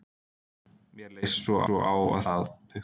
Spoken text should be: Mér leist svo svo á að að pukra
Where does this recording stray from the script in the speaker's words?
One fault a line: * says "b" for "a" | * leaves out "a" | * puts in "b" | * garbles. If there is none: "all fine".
all fine